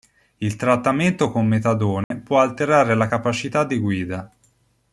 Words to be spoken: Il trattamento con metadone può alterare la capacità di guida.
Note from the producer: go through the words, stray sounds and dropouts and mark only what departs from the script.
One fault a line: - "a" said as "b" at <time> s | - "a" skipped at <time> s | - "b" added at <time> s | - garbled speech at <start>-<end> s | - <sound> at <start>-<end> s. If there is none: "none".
- dropout at 2.0-2.1 s